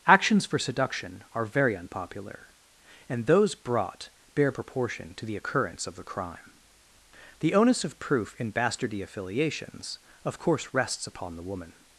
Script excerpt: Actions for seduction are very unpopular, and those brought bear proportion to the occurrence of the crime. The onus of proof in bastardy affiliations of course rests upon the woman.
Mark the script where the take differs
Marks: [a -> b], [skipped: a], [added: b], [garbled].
Actions for seduction are very unpopular, and those brought bear proportion to the occurrence of the crime. The onus of proof in bastardy affiliations of course rests upon the woman.